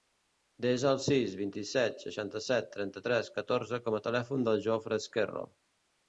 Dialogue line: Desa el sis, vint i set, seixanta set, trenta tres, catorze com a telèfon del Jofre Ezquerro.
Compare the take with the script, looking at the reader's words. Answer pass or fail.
pass